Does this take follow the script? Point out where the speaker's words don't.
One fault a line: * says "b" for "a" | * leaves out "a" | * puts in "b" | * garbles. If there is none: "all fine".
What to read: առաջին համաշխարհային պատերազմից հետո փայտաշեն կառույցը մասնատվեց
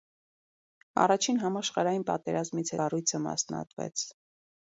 * leaves out "հետո փայտաշեն"